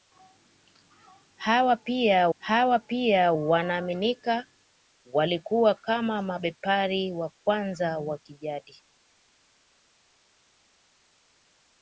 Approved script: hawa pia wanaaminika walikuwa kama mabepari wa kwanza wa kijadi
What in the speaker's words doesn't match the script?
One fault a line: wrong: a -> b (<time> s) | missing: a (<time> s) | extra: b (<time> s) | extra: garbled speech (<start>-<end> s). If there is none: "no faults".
extra: hawa pia (2.4 s)